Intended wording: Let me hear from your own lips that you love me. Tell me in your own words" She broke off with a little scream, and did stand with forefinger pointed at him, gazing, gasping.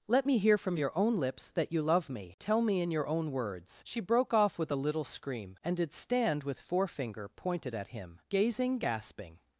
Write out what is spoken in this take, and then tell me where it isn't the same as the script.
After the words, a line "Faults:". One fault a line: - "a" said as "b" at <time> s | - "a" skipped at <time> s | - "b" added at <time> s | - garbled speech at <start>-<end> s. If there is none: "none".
Let me hear from your own lips that you love me. Tell me in your own words" She broke off with a little scream, and did stand with forefinger pointed at him, gazing, gasping.
Faults:
none